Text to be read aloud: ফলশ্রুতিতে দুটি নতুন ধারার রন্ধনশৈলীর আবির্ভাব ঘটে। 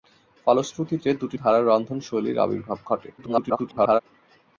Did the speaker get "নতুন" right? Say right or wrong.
wrong